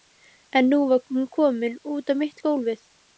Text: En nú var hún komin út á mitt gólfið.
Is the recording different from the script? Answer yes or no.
no